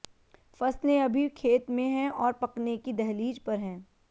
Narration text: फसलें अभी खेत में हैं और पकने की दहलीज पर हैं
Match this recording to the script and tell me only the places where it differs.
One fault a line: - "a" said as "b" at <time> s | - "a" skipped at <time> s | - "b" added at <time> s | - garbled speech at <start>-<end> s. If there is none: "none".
none